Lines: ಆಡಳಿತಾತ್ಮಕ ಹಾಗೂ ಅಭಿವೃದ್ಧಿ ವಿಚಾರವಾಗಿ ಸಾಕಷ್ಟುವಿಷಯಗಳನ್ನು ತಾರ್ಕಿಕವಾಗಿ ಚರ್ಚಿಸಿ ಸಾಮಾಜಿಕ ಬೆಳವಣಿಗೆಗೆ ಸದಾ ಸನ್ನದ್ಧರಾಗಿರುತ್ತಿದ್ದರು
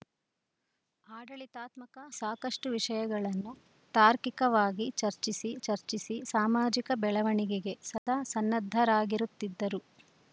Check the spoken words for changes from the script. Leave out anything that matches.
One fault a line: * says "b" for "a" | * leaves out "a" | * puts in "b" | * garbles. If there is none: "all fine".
* leaves out "ಹಾಗೂ ಅಭಿವೃದ್ಧಿ ವಿಚಾರವಾಗಿ"
* puts in "ಚರ್ಚಿಸಿ"